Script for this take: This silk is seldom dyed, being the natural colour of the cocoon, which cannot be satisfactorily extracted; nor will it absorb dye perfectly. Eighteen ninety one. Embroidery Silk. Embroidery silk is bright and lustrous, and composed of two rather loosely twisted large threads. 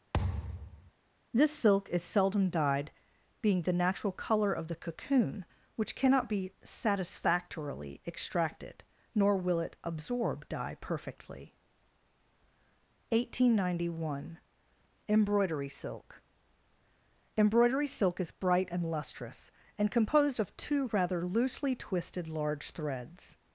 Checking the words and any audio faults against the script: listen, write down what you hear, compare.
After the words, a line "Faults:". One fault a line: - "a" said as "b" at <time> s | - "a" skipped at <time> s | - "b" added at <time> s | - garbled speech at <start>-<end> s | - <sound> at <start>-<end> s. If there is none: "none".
This silk is seldom dyed, being the natural colour of the cocoon, which cannot be satisfactorily extracted; nor will it absorb dye perfectly. Eighteen ninety one. Embroidery Silk. Embroidery silk is bright and lustrous, and composed of two rather loosely twisted large threads.
Faults:
- thud at 0.1-0.9 s